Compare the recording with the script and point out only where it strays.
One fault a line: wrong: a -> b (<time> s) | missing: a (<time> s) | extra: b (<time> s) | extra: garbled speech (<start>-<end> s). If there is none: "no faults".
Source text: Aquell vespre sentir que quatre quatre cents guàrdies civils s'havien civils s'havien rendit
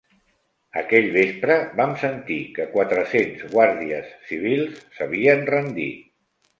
extra: vam (1.8 s)
missing: quatre (3.0 s)
missing: civils s'havien (5.5 s)